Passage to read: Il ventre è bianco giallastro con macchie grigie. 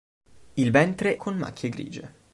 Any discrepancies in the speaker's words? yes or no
yes